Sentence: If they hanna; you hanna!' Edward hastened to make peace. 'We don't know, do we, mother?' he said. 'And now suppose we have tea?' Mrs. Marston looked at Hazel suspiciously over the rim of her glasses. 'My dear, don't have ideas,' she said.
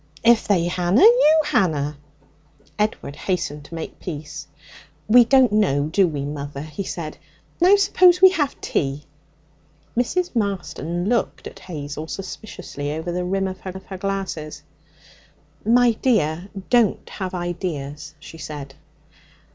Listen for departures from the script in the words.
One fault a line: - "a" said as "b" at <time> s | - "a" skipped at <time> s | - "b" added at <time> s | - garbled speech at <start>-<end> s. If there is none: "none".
- "And" skipped at 7.2 s
- "of her" added at 13.7 s